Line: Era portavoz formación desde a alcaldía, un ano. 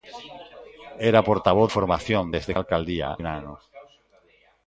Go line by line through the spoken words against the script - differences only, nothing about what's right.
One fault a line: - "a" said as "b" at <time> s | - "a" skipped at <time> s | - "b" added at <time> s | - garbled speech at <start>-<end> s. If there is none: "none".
none